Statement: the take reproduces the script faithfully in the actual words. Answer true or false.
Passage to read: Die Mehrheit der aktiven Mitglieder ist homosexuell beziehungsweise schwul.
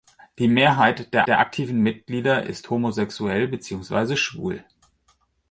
false